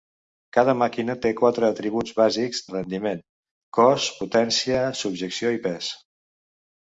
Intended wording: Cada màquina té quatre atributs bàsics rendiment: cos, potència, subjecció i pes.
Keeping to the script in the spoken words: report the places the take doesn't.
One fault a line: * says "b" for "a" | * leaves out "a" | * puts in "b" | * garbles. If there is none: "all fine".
all fine